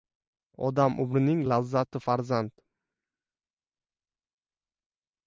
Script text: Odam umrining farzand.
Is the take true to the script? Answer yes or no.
no